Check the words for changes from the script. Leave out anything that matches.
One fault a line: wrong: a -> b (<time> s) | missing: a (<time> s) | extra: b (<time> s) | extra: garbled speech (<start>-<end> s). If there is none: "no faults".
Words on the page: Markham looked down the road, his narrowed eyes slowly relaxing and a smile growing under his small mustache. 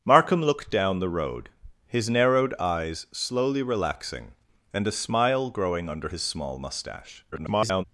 extra: garbled speech (7.3-7.8 s)